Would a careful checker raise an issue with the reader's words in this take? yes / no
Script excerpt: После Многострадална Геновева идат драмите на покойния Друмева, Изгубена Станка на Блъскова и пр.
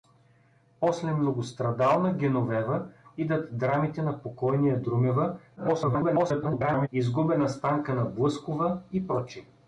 yes